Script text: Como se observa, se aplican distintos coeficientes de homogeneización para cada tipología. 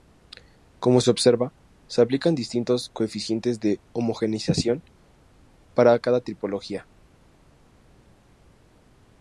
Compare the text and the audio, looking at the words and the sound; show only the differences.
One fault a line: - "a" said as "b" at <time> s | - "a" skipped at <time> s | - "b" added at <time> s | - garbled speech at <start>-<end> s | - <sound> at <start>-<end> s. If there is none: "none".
none